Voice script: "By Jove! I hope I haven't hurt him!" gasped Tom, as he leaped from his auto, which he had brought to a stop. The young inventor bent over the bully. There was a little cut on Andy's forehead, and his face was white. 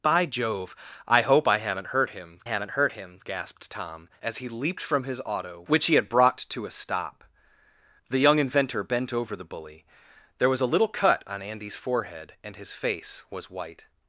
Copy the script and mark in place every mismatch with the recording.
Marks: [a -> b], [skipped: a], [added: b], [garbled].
"By Jove! I hope I haven't hurt him!" [added: haven't hurt him] gasped Tom, as he leaped from his auto, which he had brought to a stop. The young inventor bent over the bully. There was a little cut on Andy's forehead, and his face was white.